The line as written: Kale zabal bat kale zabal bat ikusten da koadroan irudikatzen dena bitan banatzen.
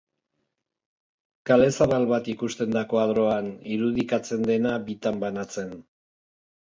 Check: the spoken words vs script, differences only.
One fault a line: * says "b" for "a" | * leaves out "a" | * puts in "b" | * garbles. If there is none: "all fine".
* leaves out "kale zabal bat"